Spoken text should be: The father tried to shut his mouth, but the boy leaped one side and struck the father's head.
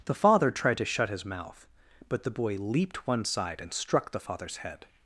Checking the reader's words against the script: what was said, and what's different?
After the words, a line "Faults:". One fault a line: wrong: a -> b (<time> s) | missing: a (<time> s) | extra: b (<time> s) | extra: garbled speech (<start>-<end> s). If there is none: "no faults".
The father tried to shut his mouth, but the boy leaped one side and struck the father's head.
Faults:
no faults